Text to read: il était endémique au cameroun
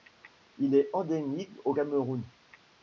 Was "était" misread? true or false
true